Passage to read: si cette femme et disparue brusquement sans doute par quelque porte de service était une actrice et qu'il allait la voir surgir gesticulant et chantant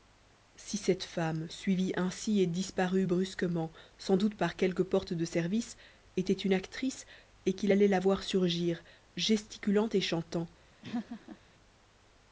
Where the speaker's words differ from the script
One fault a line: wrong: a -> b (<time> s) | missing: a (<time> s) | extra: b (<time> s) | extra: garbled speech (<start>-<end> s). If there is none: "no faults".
extra: suivie ainsi (1.5 s)